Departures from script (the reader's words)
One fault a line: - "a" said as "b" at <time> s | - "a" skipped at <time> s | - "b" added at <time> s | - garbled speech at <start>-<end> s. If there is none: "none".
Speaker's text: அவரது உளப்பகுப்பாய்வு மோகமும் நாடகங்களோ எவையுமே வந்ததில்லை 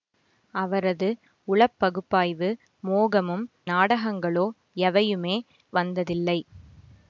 none